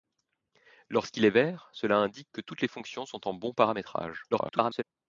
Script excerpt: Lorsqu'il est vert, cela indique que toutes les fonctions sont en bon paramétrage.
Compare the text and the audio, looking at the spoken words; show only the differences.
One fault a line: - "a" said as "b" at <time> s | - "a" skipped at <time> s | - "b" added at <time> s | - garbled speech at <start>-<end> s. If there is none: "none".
- garbled speech at 4.3-4.8 s